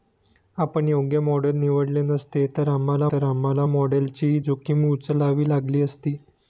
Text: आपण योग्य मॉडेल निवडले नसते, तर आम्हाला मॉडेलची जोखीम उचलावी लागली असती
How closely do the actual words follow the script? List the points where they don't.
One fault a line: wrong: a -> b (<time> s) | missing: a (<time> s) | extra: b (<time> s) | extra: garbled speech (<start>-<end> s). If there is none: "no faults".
extra: तर आम्हाला (3.1 s)